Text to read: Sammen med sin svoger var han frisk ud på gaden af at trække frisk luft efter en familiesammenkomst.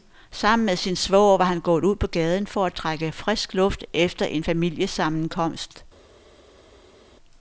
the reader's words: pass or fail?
fail